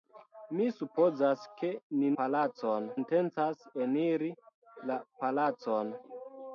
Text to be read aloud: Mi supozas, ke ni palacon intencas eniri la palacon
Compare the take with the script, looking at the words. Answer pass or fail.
pass